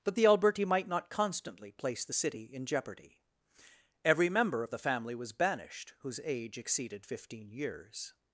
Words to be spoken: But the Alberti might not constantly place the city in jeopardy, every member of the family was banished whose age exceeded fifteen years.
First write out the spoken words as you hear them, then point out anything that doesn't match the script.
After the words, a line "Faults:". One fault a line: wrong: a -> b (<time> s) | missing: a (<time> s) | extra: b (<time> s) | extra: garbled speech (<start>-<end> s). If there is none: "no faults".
But the Alberti might not constantly place the city in jeopardy, every member of the family was banished whose age exceeded fifteen years.
Faults:
no faults